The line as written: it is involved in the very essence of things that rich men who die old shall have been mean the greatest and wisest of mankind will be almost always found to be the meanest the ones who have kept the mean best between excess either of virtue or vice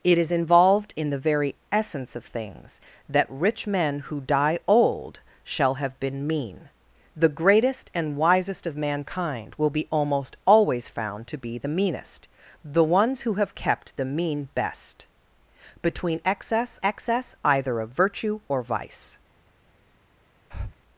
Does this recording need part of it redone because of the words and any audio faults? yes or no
yes